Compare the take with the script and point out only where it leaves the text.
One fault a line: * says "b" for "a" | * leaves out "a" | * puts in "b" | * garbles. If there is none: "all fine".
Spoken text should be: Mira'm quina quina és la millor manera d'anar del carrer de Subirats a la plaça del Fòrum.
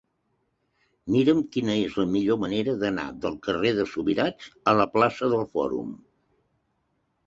* leaves out "quina"